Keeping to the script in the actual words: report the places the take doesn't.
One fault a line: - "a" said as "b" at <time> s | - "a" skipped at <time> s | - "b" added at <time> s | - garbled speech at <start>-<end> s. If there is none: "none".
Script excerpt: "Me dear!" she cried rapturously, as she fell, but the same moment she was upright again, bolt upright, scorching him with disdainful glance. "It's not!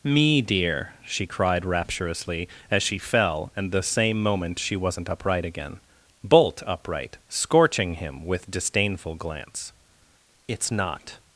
- "but" said as "and" at 3.5 s
- "was" said as "wasn't" at 4.8 s